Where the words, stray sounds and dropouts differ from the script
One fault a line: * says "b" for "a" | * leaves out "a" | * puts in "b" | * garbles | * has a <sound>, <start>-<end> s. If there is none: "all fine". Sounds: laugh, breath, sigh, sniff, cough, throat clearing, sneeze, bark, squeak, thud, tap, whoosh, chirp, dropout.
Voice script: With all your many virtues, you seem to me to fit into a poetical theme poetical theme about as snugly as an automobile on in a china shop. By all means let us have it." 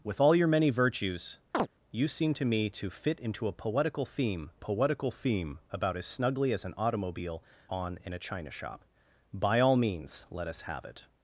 * has a chirp, 1.5-1.7 s